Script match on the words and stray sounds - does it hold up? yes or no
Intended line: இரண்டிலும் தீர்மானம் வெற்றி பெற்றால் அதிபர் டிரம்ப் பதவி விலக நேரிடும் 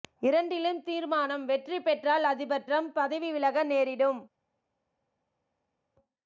yes